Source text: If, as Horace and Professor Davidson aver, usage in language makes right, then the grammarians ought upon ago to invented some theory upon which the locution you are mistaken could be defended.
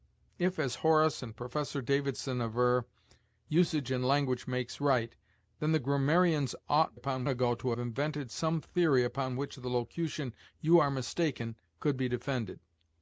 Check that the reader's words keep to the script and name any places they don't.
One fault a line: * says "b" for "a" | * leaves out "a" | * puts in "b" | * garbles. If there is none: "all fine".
all fine